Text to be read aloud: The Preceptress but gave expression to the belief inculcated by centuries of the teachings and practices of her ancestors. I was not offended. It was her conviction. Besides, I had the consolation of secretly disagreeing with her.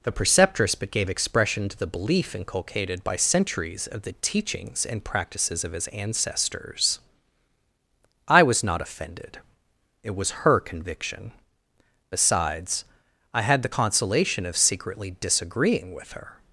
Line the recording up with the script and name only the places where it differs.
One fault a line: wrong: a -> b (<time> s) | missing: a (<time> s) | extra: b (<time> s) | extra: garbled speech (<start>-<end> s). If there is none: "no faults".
wrong: her -> his (5.7 s)